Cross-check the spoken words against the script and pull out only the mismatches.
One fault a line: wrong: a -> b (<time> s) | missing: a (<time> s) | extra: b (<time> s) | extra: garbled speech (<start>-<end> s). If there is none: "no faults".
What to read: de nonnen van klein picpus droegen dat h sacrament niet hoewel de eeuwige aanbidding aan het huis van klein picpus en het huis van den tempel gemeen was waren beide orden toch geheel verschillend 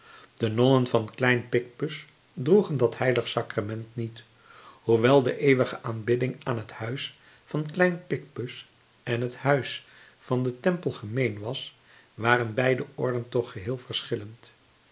no faults